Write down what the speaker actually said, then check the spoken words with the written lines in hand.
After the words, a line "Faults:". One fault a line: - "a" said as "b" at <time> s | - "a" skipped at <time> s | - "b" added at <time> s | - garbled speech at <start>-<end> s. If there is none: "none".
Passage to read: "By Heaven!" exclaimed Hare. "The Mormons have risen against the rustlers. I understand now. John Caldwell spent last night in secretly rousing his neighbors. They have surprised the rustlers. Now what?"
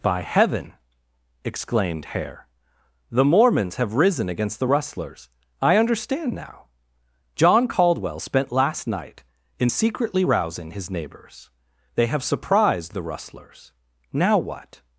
"By Heaven!" exclaimed Hare. "The Mormons have risen against the rustlers. I understand now. John Caldwell spent last night in secretly rousing his neighbors. They have surprised the rustlers. Now what?"
Faults:
none